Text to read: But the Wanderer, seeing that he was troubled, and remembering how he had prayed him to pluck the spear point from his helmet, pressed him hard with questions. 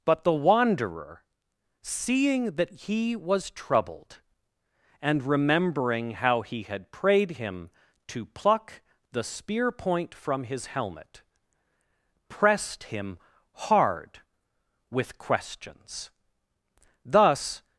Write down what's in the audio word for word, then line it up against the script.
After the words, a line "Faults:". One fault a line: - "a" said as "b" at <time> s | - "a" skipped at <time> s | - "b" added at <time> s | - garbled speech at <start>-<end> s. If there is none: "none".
But the Wanderer, seeing that he was troubled, and remembering how he had prayed him to pluck the spear point from his helmet, pressed him hard with questions. Thus
Faults:
- "Thus" added at 17.0 s